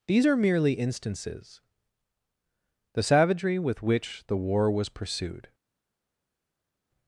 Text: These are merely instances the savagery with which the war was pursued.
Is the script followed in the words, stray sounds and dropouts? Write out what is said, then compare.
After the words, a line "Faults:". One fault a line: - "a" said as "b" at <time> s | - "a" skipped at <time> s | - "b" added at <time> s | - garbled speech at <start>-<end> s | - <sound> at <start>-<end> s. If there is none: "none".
These are merely instances the savagery with which the war was pursued.
Faults:
none